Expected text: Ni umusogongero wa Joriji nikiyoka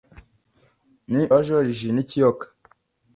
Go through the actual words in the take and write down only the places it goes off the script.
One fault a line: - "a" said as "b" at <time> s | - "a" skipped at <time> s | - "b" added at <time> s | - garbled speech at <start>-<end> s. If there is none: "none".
- "umusogongero" skipped at 1.2 s